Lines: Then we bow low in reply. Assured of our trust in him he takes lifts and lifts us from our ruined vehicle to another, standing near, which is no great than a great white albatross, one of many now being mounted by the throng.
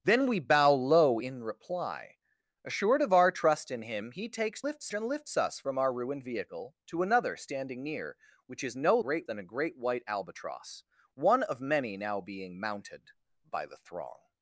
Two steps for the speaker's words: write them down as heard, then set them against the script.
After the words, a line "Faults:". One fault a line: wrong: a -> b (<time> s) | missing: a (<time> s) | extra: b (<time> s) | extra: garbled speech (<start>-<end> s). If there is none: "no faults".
Then we bow low in reply. Assured of our trust in him he takes lifts and lifts us from our ruined vehicle to another, standing near, which is no great than a great white albatross, one of many now being mounted by the throng.
Faults:
no faults